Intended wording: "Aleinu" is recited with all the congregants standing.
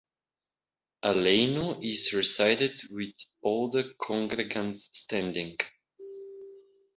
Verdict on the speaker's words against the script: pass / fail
pass